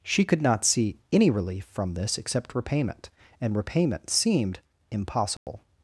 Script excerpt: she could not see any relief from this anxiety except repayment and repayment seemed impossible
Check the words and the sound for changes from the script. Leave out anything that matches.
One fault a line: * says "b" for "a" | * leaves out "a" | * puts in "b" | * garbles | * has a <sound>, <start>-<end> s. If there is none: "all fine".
* leaves out "anxiety"
* has a dropout, 5.4-5.5 s